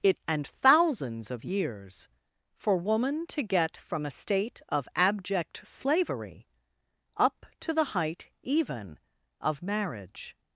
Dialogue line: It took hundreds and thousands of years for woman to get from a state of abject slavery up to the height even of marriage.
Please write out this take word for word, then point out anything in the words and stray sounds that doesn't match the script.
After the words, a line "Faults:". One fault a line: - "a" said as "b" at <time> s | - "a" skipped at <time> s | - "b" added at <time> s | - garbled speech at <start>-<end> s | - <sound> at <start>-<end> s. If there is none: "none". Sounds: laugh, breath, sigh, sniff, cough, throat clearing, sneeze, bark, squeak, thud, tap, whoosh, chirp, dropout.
It and thousands of years for woman to get from a state of abject slavery up to the height even of marriage.
Faults:
- "took hundreds" skipped at 0.2 s